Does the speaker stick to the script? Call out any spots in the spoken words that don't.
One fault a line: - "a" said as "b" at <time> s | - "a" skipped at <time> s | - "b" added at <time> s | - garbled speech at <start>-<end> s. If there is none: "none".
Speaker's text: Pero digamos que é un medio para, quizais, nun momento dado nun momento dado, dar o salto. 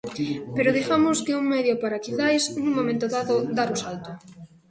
- "nun momento dado" skipped at 3.4 s